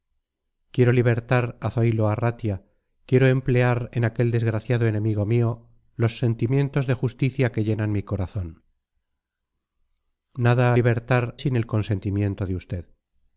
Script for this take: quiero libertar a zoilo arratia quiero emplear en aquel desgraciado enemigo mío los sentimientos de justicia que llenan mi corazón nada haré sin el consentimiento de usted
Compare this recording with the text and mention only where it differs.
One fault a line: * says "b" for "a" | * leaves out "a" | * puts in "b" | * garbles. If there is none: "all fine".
* says "libertar" for "haré"